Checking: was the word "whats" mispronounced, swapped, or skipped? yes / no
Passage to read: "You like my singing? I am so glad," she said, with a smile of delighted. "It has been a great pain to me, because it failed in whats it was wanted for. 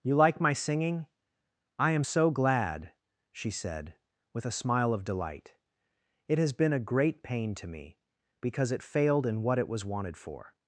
yes